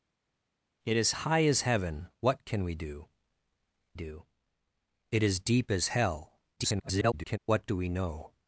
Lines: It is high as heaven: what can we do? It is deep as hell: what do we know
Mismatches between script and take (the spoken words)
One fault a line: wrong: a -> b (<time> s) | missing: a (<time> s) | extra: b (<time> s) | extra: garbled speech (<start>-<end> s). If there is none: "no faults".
extra: do (3.9 s)
extra: garbled speech (6.6-7.4 s)